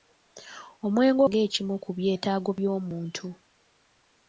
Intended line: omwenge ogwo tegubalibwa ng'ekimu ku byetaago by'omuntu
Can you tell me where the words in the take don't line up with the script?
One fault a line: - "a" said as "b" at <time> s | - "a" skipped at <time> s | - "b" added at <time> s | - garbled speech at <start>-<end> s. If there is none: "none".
- "ogwo tegubalibwa" skipped at 1.2 s